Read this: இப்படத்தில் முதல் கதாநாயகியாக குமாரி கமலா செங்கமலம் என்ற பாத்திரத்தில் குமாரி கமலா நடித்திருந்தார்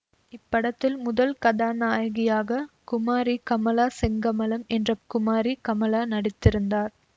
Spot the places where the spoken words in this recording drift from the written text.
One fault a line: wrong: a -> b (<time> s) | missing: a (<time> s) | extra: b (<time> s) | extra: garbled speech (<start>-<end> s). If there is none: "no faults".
missing: பாத்திரத்தில் (5.0 s)